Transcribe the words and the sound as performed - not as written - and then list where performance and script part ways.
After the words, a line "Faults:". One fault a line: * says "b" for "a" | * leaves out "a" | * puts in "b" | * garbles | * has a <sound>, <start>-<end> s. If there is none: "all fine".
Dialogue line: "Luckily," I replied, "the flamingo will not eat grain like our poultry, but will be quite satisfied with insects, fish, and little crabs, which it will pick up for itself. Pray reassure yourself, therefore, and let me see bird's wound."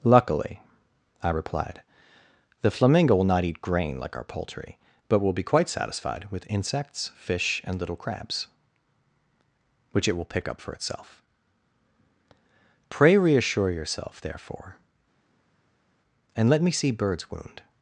"Luckily," I replied, "the flamingo will not eat grain like our poultry, but will be quite satisfied with insects, fish, and little crabs, which it will pick up for itself. Pray reassure yourself, therefore, and let me see bird's wound."
Faults:
all fine